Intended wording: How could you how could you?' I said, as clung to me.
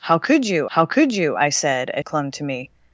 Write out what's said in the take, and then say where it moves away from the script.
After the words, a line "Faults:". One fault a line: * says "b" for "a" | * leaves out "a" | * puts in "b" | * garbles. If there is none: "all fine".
How could you how could you?' I said, as clung to me.
Faults:
all fine